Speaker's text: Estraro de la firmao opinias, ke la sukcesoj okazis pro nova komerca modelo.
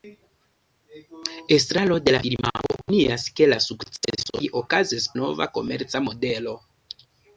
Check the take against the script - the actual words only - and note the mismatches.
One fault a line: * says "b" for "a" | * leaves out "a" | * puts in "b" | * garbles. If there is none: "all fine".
* leaves out "pro"